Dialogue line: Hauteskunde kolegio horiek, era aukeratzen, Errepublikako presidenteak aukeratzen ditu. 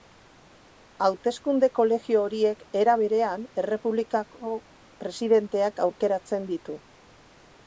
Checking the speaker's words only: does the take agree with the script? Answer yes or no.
no